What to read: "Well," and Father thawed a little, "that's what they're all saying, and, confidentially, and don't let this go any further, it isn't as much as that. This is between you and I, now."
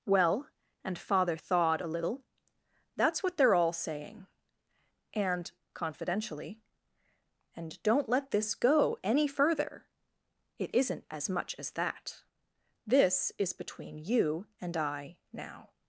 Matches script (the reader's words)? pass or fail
pass